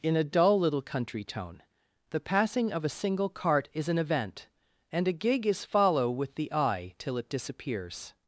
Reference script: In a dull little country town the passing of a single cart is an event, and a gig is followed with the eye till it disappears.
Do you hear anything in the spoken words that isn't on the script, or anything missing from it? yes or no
yes